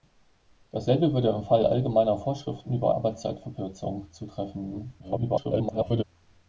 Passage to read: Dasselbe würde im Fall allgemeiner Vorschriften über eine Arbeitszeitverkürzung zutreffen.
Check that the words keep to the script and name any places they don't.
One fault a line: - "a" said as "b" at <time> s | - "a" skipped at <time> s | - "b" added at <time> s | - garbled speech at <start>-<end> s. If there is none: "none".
- "eine" skipped at 2.9 s
- garbled speech at 5.0-6.0 s